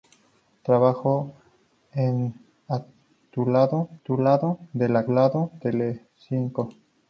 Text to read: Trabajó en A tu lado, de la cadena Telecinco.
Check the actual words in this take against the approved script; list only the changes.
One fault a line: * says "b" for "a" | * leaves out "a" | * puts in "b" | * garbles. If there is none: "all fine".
* puts in "tu lado"
* says "lado" for "cadena"